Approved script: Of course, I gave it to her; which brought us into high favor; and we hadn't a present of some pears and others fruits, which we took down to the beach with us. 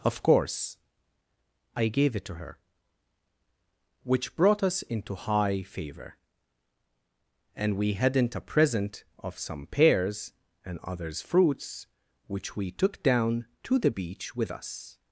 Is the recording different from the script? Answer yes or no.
no